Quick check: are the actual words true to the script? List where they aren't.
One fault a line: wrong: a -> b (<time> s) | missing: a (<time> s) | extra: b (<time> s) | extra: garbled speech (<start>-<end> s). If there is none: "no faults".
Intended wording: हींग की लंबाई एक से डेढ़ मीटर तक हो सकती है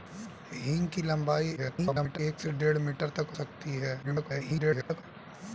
extra: garbled speech (1.6-2.2 s)
missing: हो (3.3 s)
extra: garbled speech (4.0-5.0 s)